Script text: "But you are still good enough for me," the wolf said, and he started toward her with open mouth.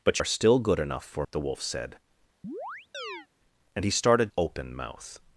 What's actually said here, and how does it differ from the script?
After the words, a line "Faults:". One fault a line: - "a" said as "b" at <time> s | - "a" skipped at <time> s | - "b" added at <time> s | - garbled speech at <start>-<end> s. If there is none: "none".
"But are still good enough for," the wolf said, and he started open mouth.
Faults:
- "you" skipped at 0.2 s
- "me" skipped at 1.3 s
- "toward her with" skipped at 4.3 s